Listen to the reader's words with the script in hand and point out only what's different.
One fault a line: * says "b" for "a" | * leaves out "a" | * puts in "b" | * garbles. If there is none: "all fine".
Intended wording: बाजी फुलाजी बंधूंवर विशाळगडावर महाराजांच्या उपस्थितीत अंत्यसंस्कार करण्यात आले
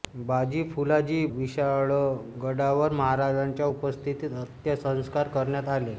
* leaves out "बंधूंवर"